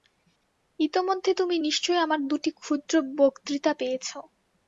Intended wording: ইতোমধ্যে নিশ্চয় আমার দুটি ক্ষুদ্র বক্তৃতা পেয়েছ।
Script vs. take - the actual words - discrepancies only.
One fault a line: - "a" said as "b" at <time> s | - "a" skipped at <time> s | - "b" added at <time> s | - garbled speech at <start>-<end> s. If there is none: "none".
- "তুমি" added at 1.3 s